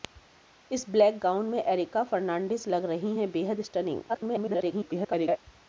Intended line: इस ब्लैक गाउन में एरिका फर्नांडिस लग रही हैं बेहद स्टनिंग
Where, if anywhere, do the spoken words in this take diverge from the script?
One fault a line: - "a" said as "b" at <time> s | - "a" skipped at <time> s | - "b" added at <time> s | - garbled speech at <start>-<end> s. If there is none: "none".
- garbled speech at 4.1-5.4 s